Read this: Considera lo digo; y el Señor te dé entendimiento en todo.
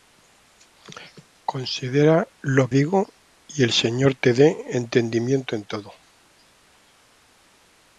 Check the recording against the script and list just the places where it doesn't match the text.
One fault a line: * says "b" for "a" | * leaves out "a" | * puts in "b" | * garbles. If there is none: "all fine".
all fine